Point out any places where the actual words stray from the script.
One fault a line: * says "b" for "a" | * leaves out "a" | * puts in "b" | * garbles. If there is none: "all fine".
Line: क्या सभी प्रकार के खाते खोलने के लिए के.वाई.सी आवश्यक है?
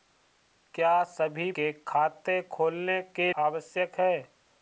* leaves out "प्रकार"
* leaves out "लिए के.वाई.सी"